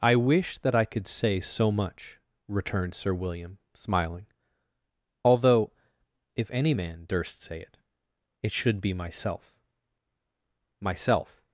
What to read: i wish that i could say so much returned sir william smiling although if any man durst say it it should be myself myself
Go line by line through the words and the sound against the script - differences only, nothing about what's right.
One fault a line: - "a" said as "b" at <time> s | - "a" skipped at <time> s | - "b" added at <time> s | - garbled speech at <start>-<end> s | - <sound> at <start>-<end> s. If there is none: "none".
none